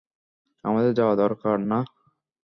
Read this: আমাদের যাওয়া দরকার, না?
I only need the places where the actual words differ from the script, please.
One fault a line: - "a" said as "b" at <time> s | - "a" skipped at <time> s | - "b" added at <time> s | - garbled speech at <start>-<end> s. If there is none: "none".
none